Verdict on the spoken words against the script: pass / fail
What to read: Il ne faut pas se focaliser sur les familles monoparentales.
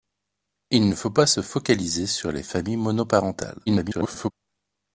fail